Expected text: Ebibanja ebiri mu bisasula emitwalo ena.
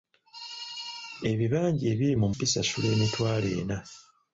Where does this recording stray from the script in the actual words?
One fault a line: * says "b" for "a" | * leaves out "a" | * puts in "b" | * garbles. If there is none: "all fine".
all fine